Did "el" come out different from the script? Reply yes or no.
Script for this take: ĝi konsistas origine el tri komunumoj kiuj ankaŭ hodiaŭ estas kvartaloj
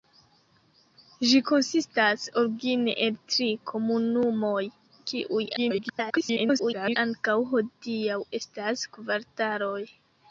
no